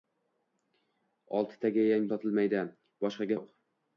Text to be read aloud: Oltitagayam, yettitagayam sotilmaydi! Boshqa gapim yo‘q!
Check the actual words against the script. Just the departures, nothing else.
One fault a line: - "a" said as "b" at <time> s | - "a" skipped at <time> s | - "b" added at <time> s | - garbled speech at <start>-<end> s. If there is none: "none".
- "yettitagayam" skipped at 2.1 s
- "gapim" skipped at 3.3 s